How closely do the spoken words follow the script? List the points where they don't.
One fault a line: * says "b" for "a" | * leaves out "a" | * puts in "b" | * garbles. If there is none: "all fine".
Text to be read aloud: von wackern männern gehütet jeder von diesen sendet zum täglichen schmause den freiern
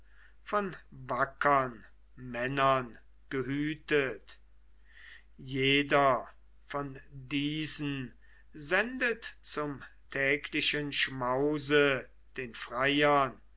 all fine